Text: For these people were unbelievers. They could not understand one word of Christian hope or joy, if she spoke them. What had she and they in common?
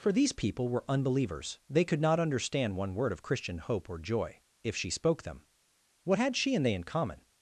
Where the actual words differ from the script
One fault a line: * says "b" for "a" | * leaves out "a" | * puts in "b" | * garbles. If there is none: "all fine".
all fine